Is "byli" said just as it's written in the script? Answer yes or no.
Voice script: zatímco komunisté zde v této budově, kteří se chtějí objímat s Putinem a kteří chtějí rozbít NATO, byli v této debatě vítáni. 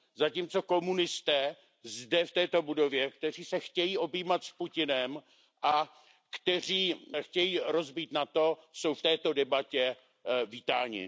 no